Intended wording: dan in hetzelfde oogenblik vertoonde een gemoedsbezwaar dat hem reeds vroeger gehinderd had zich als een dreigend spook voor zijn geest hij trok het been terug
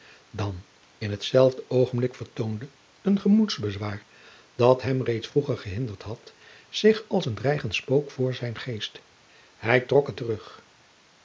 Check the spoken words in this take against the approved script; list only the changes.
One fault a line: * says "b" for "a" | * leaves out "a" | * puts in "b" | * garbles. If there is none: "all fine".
* leaves out "been"